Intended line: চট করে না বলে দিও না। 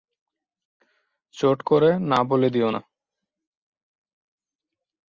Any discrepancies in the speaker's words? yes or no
no